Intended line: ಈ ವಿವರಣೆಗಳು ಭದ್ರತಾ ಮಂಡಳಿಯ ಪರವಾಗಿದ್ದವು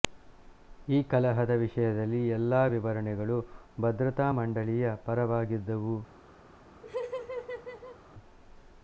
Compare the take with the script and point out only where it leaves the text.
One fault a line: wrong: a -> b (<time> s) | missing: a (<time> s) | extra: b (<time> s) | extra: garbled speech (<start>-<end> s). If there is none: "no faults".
extra: ಕಲಹದ ವಿಷಯದಲ್ಲಿ ಎಲ್ಲಾ (1.0 s)